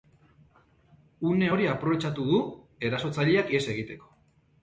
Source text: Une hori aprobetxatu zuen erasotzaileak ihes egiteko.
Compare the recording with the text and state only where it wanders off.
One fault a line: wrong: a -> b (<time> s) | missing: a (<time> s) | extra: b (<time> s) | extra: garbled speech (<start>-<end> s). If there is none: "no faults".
wrong: zuen -> du (2.3 s)